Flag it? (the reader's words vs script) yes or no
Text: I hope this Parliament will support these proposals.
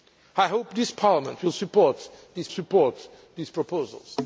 yes